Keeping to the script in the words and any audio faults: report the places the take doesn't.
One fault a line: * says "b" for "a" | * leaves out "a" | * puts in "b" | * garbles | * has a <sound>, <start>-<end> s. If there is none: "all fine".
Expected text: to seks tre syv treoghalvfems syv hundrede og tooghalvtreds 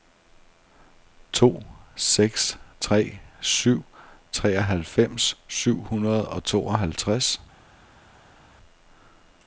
all fine